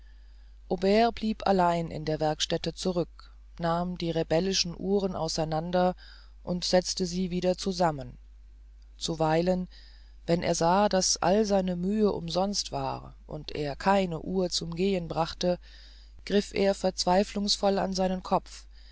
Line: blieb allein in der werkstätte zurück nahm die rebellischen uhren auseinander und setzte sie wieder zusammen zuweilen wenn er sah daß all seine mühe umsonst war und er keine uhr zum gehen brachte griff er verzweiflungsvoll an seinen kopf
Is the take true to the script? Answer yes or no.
yes